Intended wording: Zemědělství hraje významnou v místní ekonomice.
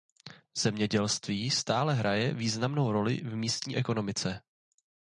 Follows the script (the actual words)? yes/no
no